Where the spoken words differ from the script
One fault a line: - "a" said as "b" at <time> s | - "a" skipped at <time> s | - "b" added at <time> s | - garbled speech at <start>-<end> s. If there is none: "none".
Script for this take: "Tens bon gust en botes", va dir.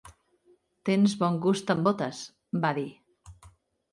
none